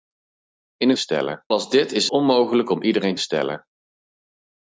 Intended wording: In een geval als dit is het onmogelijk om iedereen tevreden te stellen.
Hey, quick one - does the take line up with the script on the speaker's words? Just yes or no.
no